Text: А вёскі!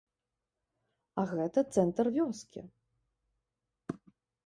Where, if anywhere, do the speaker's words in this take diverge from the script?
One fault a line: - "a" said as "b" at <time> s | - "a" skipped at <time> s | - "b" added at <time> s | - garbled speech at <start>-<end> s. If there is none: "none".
- "гэта цэнтр" added at 1.3 s